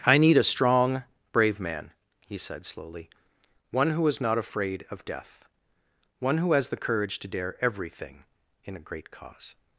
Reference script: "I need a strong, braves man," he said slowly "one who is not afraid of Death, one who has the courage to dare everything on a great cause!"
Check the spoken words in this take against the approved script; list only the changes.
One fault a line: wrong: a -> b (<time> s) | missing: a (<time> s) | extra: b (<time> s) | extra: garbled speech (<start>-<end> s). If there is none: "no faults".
wrong: braves -> brave (1.3 s)
wrong: on -> in (8.6 s)